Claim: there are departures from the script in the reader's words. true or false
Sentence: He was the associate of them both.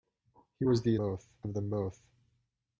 true